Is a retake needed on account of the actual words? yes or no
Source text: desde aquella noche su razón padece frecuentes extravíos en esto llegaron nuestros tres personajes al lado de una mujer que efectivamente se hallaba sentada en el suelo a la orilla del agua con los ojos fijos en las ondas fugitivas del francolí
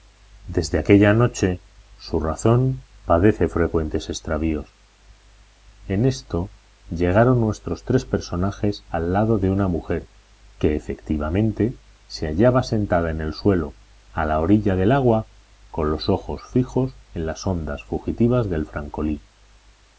no